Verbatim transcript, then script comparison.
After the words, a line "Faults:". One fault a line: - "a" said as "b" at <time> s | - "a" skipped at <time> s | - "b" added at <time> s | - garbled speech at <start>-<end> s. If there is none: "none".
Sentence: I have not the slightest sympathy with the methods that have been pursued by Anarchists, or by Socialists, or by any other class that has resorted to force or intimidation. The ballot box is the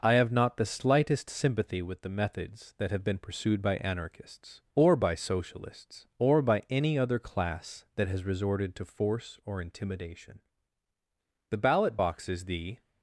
I have not the slightest sympathy with the methods that have been pursued by Anarchists, or by Socialists, or by any other class that has resorted to force or intimidation. The ballot box is the
Faults:
none